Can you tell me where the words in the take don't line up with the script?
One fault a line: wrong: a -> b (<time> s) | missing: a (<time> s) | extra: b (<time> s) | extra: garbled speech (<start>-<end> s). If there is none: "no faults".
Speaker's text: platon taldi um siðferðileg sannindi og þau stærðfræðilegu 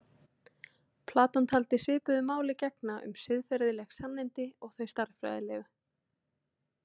extra: svipuðu máli gegna (1.8 s)